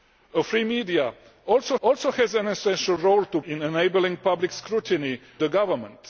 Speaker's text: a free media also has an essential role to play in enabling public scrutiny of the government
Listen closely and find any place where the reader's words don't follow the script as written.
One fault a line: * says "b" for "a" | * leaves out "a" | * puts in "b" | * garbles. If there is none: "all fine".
* puts in "also"
* leaves out "play"
* leaves out "of"